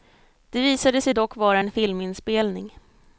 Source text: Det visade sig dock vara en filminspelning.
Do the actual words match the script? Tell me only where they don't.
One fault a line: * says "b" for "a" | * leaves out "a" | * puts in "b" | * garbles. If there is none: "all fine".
all fine